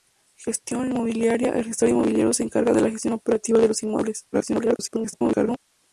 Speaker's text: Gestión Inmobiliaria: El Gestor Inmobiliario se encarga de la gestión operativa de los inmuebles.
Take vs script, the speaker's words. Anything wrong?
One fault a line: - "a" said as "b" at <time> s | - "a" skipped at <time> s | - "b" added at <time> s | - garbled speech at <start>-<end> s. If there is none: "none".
- garbled speech at 4.3-5.6 s